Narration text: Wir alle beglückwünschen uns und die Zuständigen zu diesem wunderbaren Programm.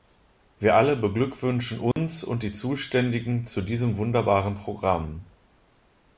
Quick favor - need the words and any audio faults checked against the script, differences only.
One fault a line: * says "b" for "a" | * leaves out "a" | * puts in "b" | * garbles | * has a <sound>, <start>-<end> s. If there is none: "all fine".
* has a dropout, 1.9-2.0 s